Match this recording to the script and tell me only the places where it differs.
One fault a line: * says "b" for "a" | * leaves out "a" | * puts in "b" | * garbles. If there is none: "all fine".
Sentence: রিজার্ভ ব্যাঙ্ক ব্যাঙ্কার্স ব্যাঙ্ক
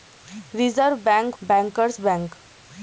all fine